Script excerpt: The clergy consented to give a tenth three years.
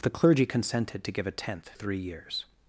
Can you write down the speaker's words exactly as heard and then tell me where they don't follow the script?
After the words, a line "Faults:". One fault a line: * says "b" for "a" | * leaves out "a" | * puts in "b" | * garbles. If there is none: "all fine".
The clergy consented to give a tenth three years.
Faults:
all fine